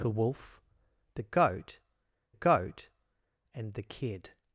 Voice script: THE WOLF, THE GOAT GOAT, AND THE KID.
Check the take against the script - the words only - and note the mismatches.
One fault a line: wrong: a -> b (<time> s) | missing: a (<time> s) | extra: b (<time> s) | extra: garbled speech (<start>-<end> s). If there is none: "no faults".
no faults